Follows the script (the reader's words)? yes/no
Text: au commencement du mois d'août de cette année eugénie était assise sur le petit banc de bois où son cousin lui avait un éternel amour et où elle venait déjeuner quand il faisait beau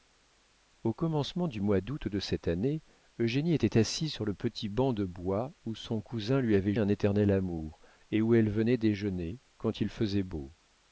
yes